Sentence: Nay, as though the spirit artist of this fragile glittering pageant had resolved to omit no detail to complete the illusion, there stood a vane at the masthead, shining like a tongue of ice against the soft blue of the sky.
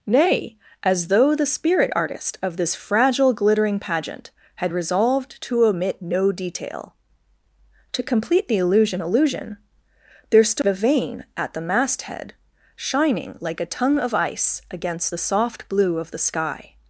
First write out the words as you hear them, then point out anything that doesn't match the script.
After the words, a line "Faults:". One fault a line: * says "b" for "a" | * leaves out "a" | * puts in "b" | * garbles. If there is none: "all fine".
Nay, as though the spirit artist of this fragile glittering pageant had resolved to omit no detail to complete the illusion illusion, there stood a vane at the masthead, shining like a tongue of ice against the soft blue of the sky.
Faults:
* puts in "illusion"